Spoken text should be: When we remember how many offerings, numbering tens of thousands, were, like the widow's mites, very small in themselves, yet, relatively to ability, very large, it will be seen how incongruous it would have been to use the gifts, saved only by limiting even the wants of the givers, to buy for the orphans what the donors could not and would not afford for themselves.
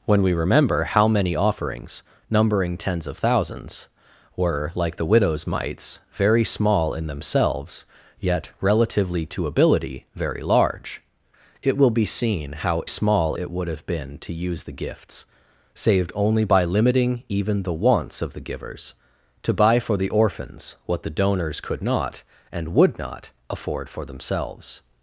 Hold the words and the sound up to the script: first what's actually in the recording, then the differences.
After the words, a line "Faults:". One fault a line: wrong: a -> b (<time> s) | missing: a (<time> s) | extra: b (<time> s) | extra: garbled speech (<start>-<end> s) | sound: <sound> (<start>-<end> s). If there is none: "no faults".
When we remember how many offerings, numbering tens of thousands, were, like the widow's mites, very small in themselves, yet, relatively to ability, very large, it will be seen how small it would have been to use the gifts, saved only by limiting even the wants of the givers, to buy for the orphans what the donors could not and would not afford for themselves.
Faults:
wrong: incongruous -> small (12.8 s)